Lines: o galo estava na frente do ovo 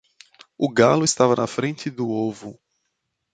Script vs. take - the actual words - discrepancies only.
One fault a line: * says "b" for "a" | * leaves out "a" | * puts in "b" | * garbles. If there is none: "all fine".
all fine